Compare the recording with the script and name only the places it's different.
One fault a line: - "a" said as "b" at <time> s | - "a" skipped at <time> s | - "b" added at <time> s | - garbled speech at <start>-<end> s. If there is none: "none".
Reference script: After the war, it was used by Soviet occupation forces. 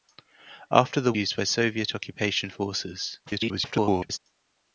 - "war it was" skipped at 1.1 s
- garbled speech at 3.3-4.2 s